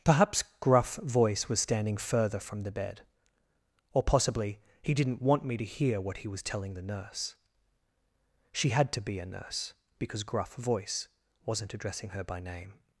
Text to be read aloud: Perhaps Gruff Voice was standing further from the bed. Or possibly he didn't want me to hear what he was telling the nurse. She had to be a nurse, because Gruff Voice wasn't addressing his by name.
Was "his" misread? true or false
true